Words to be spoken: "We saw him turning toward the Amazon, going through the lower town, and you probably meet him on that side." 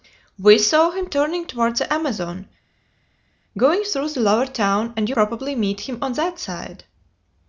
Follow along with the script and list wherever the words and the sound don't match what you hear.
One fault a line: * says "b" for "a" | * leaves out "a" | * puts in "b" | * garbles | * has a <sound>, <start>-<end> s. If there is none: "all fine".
all fine